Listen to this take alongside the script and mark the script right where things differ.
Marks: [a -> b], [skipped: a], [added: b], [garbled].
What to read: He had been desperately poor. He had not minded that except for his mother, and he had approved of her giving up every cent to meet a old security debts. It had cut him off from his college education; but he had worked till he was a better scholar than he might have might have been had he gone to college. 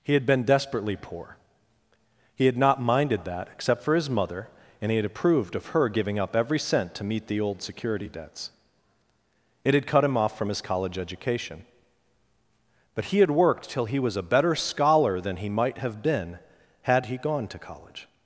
He had been desperately poor. He had not minded that except for his mother, and he had approved of her giving up every cent to meet [a -> the] old security debts. It had cut him off from his college education; but he had worked till he was a better scholar than he might have [skipped: might have] been had he gone to college.